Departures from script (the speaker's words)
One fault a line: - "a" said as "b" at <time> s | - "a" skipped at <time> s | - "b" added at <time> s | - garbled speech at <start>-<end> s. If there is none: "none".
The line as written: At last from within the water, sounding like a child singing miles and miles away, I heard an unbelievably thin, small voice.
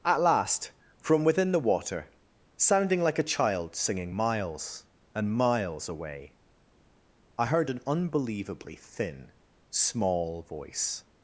none